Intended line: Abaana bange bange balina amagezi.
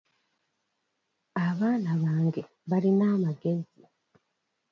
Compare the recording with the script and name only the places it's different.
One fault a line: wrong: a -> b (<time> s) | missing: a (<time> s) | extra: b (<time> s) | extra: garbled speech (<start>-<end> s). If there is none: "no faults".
missing: bange (2.4 s)